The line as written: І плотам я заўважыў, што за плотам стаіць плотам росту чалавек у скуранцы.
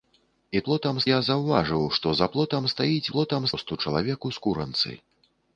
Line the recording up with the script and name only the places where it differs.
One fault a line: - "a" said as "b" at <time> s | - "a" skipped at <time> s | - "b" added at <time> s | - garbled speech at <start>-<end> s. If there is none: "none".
none